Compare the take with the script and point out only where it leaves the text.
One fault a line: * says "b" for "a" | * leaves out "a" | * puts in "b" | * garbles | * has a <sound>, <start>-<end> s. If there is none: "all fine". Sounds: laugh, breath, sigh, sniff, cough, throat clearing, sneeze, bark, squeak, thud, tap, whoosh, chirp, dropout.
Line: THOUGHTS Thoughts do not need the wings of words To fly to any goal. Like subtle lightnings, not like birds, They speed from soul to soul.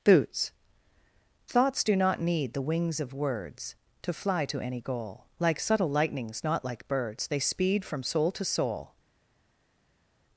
* says "Boots" for "THOUGHTS"